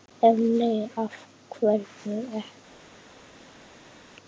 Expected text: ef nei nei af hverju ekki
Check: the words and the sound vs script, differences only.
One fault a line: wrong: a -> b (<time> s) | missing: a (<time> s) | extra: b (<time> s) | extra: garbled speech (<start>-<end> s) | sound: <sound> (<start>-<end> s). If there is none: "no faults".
missing: nei (0.8 s)